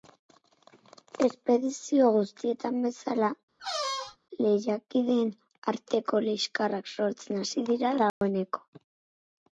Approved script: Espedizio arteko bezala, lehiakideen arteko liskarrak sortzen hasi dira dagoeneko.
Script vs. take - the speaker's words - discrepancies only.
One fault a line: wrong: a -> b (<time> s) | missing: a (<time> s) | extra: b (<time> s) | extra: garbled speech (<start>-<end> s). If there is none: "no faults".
wrong: arteko -> guztietan (2.1 s)